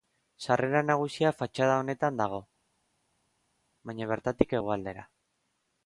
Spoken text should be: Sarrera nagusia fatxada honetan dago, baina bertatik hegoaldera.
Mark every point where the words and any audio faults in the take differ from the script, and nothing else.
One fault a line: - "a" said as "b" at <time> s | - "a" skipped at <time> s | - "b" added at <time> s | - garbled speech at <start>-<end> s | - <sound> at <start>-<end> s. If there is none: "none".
none